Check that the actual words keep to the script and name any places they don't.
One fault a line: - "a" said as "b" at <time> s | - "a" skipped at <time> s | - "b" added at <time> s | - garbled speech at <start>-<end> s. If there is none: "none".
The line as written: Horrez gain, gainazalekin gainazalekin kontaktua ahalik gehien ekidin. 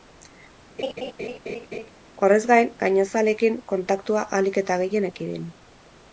- "gainazalekin" skipped at 3.6 s
- "eta" added at 4.6 s